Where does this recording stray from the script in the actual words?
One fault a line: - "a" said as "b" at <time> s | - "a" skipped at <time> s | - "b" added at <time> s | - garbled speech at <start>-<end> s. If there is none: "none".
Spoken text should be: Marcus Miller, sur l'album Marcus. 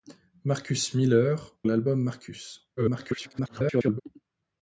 - "sur" skipped at 1.6 s
- garbled speech at 2.8-4.0 s